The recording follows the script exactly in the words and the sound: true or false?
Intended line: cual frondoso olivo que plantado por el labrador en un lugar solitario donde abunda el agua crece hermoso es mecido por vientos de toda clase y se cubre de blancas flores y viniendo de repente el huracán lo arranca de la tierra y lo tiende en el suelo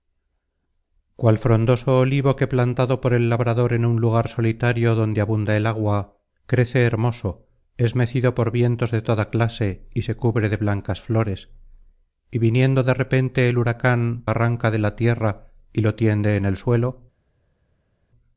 false